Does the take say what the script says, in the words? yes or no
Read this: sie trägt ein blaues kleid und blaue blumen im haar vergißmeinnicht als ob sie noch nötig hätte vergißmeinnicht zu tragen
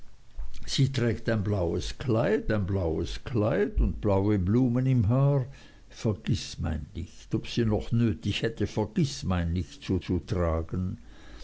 no